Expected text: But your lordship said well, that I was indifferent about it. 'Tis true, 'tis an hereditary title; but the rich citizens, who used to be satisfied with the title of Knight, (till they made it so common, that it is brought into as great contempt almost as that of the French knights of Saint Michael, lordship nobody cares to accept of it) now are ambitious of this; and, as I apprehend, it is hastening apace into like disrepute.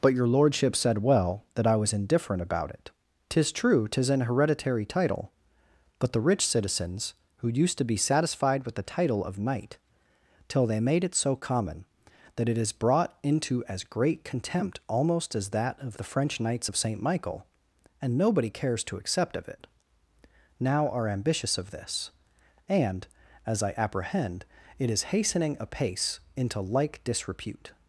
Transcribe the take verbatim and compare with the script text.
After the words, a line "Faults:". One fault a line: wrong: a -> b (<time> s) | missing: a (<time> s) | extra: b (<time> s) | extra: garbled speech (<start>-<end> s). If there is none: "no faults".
But your lordship said well, that I was indifferent about it. 'Tis true, 'tis an hereditary title; but the rich citizens, who used to be satisfied with the title of Knight, (till they made it so common, that it is brought into as great contempt almost as that of the French knights of Saint Michael, and nobody cares to accept of it) now are ambitious of this; and, as I apprehend, it is hastening apace into like disrepute.
Faults:
wrong: lordship -> and (18.0 s)